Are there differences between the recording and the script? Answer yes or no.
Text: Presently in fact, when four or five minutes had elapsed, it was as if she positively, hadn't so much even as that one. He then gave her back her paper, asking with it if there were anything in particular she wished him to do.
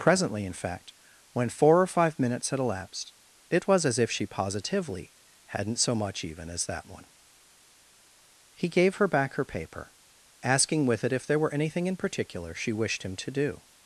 yes